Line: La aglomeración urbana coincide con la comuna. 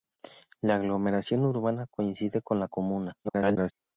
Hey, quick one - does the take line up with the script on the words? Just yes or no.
no